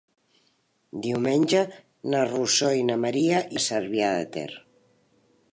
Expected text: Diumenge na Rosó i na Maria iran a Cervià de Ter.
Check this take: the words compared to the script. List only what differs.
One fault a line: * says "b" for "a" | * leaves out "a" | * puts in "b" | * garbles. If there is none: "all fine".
* leaves out "iran"